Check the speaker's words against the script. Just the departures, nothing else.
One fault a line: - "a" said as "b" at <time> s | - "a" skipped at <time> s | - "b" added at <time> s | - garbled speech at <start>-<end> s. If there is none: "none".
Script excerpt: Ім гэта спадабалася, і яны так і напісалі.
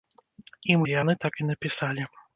- "гэта спадабалася" skipped at 0.8 s